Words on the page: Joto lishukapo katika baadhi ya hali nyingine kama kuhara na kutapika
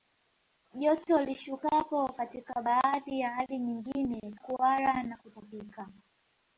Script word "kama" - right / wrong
wrong